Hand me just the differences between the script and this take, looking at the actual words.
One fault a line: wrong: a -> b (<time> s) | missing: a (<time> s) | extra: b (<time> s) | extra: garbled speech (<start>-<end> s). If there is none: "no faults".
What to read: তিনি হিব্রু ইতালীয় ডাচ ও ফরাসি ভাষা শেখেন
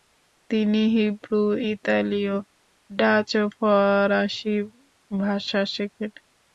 no faults